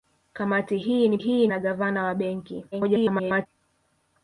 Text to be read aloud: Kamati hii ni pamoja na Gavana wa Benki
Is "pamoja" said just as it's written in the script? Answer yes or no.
no